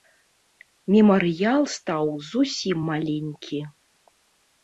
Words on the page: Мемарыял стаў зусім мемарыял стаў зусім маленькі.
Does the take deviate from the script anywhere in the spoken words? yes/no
yes